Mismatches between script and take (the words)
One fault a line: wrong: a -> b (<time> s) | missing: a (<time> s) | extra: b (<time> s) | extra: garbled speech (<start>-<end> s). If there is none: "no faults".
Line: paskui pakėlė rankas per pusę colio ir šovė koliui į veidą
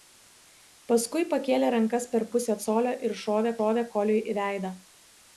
extra: šovė (3.6 s)